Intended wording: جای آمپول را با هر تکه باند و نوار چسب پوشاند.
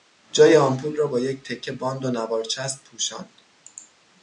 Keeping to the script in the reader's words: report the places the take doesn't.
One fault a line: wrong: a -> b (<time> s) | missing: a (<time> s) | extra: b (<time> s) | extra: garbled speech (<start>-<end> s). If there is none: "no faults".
wrong: هر -> یک (1.2 s)